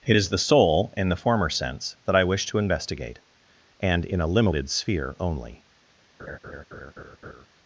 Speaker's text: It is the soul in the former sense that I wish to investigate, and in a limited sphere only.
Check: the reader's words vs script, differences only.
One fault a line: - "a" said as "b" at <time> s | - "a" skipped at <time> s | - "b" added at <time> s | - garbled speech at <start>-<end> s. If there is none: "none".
none